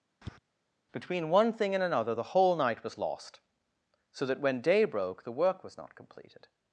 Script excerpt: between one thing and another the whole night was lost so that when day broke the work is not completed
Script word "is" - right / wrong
wrong